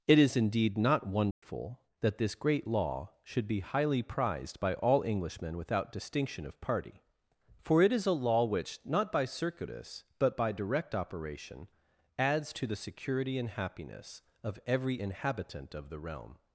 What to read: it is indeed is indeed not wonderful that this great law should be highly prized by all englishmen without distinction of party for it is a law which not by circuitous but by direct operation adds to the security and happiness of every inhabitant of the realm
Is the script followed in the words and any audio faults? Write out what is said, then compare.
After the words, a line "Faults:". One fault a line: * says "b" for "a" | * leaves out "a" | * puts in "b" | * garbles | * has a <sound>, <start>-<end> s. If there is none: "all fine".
it is indeed not wonderful that this great law should be highly prized by all englishmen without distinction of party for it is a law which not by circuitous but by direct operation adds to the security and happiness of every inhabitant of the realm
Faults:
* leaves out "is indeed"
* has a dropout, 1.3-1.4 s